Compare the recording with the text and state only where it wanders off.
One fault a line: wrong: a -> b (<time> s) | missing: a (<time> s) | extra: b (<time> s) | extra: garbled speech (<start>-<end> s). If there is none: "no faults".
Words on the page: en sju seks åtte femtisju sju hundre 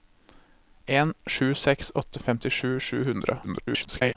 extra: garbled speech (3.4-4.2 s)